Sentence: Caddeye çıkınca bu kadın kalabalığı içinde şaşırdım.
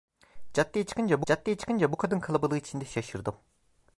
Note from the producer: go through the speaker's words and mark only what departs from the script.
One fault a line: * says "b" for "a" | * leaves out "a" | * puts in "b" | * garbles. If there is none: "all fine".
* puts in "caddeye çıkınca"